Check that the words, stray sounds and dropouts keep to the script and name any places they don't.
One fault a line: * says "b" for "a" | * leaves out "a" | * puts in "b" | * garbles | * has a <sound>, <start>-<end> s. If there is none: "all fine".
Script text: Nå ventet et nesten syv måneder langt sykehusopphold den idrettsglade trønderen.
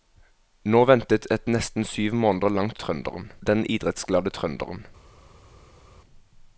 * says "trønderen" for "sykehusopphold"